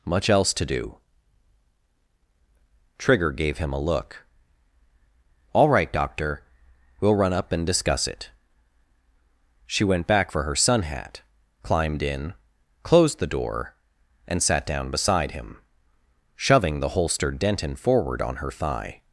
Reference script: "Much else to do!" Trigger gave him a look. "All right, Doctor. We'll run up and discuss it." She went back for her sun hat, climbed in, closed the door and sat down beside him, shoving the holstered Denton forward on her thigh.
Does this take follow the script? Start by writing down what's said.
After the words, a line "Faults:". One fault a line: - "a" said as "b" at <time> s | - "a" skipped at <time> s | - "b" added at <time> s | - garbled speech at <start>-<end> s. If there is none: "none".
"Much else to do!" Trigger gave him a look. "All right, Doctor. We'll run up and discuss it." She went back for her sun hat, climbed in, closed the door and sat down beside him, shoving the holstered Denton forward on her thigh.
Faults:
none